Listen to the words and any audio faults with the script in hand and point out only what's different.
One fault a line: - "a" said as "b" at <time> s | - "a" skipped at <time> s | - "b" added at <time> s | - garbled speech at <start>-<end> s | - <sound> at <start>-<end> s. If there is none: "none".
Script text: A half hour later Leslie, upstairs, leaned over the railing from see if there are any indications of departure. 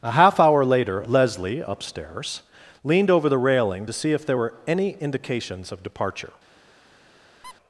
- "from" said as "to" at 3.8 s
- "are" said as "were" at 4.3 s
- squeak at 7.4-7.5 s